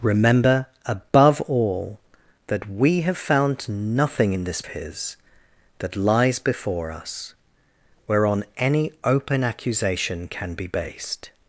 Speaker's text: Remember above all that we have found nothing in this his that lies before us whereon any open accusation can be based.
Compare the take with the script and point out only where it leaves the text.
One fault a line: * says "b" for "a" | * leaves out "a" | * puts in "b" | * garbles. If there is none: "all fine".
all fine